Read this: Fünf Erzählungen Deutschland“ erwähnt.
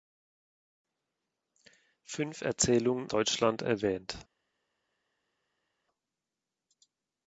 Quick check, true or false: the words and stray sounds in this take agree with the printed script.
true